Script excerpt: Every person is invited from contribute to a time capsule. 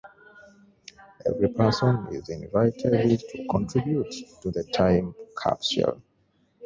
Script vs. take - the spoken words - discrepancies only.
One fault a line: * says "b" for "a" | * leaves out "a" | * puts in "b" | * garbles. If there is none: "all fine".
* says "to" for "from"
* says "the" for "a"